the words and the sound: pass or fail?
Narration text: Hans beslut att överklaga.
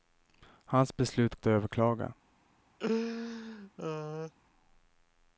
fail